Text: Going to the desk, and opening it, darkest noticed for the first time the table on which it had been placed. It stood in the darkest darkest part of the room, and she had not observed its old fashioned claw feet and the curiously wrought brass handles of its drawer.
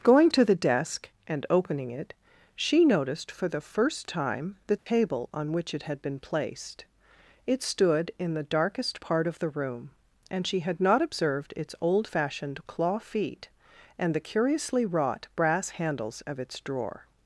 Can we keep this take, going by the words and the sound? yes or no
no